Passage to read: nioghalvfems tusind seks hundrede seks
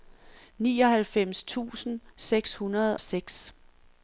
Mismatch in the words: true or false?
false